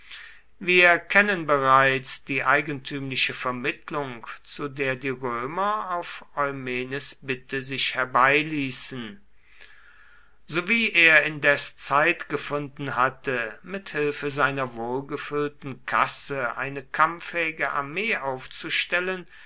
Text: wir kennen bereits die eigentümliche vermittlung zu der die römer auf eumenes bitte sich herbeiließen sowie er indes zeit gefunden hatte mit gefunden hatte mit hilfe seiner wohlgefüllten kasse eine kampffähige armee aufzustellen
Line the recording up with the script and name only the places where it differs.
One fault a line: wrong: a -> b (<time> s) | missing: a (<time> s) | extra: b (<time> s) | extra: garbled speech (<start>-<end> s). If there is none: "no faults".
missing: gefunden hatte mit (13.9 s)